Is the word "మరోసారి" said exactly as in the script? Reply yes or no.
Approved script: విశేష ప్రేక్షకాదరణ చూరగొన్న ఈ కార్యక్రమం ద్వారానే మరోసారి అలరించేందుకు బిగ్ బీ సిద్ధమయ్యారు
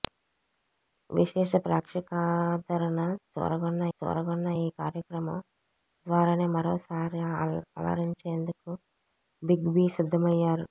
yes